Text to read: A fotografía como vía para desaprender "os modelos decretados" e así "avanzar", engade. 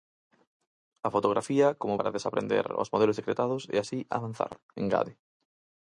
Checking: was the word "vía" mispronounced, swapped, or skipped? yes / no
yes